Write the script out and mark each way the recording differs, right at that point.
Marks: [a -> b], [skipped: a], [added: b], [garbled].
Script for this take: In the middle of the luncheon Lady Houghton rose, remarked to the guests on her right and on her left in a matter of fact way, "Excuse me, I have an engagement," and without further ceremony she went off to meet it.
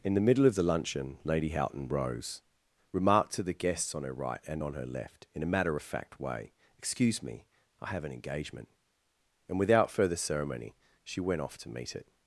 In the middle of the luncheon Lady Houghton rose, remarked to the guests on her right and on her left in a matter of fact way, "Excuse me, I have an engagement," and without further ceremony she went off to meet it.